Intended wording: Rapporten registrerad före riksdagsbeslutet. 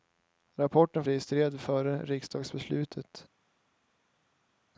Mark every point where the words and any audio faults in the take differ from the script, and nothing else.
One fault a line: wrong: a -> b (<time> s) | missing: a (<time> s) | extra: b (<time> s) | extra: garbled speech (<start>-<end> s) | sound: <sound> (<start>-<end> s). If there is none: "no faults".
no faults